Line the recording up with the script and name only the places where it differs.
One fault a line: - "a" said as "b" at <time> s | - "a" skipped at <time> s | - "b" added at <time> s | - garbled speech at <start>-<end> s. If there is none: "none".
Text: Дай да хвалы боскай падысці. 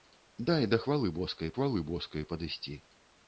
- "хвалы боскай" added at 1.5 s